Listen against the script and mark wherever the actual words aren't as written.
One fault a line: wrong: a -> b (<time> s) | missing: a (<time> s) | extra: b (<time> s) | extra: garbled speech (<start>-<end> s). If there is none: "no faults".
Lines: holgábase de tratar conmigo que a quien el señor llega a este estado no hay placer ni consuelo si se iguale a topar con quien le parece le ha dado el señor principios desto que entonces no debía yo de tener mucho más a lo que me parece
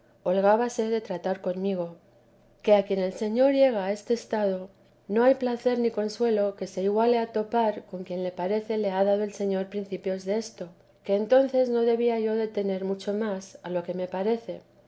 wrong: si -> que (6.5 s)